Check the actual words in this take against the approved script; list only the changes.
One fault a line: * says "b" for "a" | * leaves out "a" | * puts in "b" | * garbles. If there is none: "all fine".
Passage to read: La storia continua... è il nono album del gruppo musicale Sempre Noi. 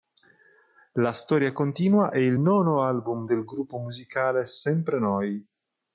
all fine